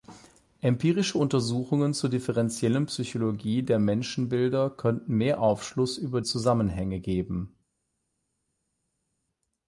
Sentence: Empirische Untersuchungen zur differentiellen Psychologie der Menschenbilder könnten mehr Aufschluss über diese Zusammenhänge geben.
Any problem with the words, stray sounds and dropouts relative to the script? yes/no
yes